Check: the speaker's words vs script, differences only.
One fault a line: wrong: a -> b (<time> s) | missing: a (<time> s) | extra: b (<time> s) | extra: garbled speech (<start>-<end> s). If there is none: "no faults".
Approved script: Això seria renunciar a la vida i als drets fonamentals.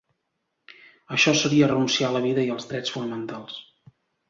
no faults